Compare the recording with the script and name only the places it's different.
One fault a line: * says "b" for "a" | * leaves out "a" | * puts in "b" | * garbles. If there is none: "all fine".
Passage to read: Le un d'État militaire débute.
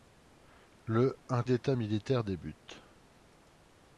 all fine